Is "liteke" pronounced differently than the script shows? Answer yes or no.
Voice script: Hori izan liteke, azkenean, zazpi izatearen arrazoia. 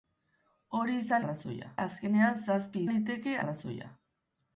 yes